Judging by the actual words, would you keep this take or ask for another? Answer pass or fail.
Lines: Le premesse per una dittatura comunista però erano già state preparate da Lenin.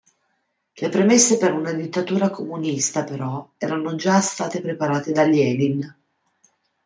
pass